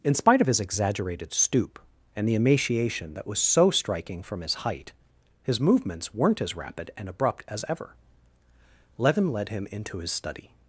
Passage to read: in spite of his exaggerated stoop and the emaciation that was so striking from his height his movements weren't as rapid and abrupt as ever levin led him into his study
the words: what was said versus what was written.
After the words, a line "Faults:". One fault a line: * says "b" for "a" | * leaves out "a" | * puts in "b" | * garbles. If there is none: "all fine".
in spite of his exaggerated stoop and the emaciation that was so striking from his height his movements weren't as rapid and abrupt as ever levin led him into his study
Faults:
all fine